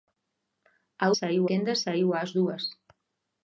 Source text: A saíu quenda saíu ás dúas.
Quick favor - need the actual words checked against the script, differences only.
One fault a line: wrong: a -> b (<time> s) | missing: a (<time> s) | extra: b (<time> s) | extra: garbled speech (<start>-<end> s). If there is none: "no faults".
no faults